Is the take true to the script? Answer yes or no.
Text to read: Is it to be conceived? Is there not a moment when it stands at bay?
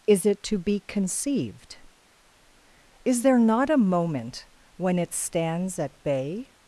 yes